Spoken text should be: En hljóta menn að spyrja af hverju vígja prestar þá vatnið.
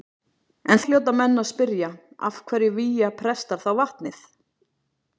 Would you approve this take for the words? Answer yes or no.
yes